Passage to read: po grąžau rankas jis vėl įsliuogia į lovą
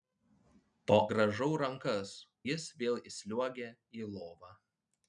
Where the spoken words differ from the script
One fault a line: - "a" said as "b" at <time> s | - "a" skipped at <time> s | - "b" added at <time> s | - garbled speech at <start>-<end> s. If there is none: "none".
none